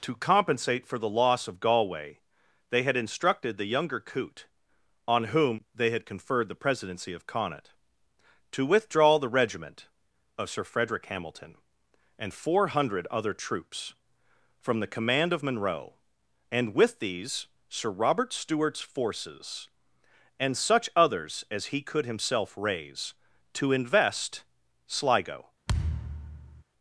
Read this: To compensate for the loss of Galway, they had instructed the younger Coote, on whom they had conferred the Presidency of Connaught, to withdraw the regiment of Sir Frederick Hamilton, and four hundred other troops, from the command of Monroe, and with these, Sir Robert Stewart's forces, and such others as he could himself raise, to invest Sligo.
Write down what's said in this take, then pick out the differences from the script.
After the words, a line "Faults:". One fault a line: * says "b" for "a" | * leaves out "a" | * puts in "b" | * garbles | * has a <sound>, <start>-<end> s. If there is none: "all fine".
To compensate for the loss of Galway, they had instructed the younger Coote, on whom they had conferred the Presidency of Connaught, to withdraw the regiment of Sir Frederick Hamilton, and four hundred other troops, from the command of Monroe, and with these, Sir Robert Stewart's forces, and such others as he could himself raise, to invest Sligo.
Faults:
* has a thud, 25.7-26.6 s